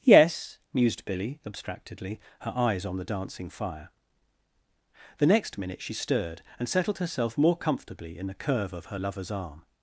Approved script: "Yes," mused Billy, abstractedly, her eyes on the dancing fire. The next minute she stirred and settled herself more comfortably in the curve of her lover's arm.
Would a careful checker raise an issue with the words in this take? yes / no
no